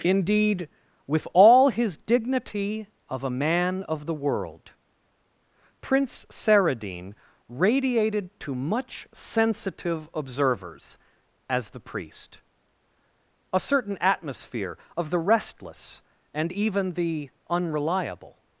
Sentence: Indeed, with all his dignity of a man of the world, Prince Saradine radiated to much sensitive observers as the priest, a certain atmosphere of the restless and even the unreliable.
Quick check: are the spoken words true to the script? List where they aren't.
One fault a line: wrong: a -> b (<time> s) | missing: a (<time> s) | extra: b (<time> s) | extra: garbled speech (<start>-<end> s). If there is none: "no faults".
no faults